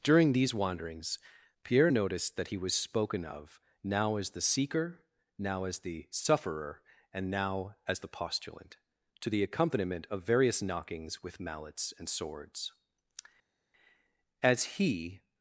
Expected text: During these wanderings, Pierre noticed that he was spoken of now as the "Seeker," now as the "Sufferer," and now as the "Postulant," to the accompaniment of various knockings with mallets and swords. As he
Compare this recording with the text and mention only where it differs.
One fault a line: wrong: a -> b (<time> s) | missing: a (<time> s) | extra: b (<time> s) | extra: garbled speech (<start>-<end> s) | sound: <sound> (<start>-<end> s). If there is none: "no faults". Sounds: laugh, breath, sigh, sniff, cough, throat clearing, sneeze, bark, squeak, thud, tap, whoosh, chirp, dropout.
no faults